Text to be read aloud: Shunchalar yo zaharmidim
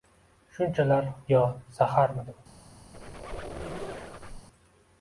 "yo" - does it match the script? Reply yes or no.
yes